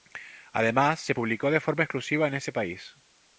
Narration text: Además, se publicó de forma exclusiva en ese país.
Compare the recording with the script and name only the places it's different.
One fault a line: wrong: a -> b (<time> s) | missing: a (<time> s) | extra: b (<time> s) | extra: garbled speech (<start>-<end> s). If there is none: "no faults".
no faults